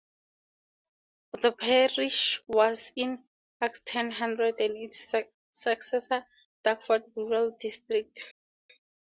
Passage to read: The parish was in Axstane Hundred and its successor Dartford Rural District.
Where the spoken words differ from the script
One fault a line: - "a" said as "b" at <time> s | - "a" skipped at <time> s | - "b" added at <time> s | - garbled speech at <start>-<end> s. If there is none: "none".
none